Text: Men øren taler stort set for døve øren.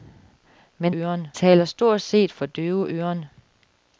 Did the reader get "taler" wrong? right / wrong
right